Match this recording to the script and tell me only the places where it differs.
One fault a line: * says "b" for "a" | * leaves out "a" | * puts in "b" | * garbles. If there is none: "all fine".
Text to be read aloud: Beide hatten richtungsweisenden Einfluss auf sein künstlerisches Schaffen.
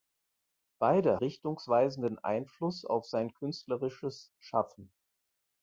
* leaves out "hatten"